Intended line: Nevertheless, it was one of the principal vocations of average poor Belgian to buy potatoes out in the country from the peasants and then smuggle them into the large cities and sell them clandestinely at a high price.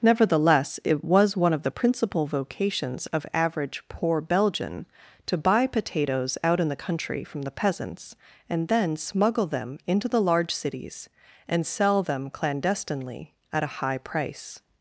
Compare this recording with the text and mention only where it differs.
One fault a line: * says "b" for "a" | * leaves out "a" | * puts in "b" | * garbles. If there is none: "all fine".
all fine